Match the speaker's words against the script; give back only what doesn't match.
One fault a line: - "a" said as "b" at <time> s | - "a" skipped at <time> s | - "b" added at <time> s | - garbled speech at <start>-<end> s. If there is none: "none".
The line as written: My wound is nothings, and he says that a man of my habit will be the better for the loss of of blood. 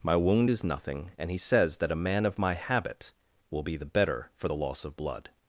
- "nothings" said as "nothing" at 0.6 s
- "of" skipped at 5.0 s